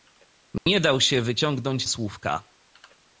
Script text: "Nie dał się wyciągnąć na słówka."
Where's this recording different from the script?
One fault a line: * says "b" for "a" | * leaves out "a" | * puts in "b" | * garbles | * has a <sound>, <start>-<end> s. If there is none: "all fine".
* has a dropout, 0.6-0.7 s
* leaves out "na"